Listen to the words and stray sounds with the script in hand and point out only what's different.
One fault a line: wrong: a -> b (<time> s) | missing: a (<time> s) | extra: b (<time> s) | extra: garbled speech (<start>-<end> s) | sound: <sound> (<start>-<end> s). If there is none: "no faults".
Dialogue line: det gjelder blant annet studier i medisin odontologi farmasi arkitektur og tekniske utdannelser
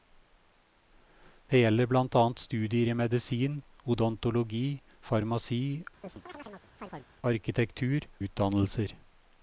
sound: chirp (6.0-7.1 s)
missing: og tekniske (8.1 s)